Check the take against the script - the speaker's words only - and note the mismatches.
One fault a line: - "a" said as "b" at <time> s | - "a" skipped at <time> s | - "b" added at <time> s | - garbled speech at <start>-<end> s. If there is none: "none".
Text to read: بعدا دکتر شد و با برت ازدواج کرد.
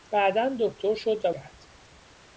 - "با برت ازدواج" skipped at 1.3 s